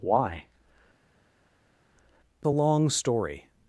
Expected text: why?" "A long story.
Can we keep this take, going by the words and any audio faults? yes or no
yes